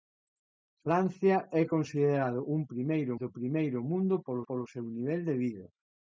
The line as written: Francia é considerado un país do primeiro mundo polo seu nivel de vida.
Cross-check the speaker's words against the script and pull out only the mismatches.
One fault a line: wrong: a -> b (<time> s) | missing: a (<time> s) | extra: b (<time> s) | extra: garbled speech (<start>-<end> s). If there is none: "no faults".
wrong: país -> primeiro (2.7 s)
extra: polo (4.5 s)